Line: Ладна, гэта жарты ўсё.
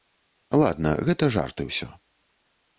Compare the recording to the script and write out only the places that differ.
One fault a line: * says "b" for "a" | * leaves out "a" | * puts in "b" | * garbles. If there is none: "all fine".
all fine